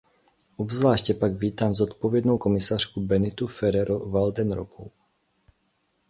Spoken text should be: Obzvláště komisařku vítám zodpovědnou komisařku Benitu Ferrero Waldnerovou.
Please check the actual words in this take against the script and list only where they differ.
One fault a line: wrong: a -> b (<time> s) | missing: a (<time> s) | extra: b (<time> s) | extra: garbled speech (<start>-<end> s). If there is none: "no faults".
wrong: komisařku -> pak (1.1 s)